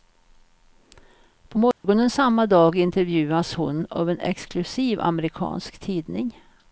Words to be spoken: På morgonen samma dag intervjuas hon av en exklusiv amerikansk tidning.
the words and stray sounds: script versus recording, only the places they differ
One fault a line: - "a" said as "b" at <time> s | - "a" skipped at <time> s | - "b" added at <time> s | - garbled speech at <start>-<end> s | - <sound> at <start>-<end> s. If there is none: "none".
- dropout at 1.7-1.8 s